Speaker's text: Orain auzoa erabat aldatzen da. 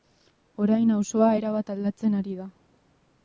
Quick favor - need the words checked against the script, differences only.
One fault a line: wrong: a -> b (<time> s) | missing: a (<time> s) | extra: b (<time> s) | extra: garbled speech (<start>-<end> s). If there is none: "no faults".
extra: ari (2.2 s)